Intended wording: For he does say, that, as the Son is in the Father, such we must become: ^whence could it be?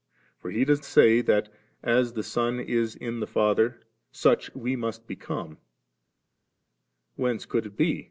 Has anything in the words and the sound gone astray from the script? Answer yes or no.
no